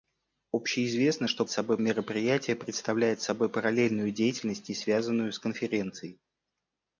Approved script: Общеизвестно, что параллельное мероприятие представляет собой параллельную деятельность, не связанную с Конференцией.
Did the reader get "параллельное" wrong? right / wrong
wrong